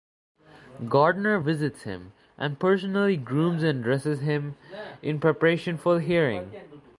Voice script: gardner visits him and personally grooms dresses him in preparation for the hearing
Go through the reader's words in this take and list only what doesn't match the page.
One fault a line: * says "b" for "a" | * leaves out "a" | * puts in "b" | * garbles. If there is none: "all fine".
* puts in "and"